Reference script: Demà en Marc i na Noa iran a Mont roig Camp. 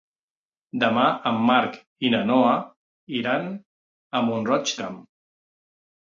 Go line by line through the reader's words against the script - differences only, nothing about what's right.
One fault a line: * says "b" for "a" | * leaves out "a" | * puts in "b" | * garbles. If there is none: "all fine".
all fine